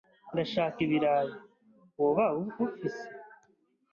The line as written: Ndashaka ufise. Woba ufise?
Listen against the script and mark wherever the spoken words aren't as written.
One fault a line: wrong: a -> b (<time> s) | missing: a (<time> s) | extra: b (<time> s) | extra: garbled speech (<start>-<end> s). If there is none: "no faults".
wrong: ufise -> ibirayi (0.9 s)